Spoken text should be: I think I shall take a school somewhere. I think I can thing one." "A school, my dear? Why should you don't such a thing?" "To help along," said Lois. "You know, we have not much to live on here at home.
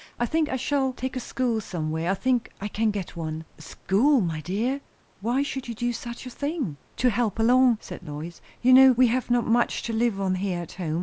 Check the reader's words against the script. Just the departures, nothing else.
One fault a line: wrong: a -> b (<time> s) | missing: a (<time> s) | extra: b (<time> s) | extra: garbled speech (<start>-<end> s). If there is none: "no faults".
wrong: thing -> get (2.9 s)
wrong: don't -> do (5.8 s)